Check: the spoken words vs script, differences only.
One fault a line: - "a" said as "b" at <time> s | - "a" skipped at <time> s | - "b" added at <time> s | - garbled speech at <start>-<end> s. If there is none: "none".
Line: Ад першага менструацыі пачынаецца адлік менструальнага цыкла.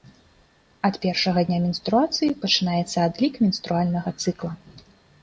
- "дня" added at 1.5 s